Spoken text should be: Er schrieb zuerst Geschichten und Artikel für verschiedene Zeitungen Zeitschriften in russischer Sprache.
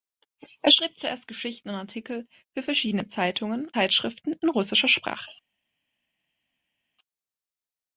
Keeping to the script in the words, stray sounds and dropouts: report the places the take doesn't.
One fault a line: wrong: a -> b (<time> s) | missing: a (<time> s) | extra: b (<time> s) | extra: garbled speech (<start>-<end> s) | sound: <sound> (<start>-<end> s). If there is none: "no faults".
no faults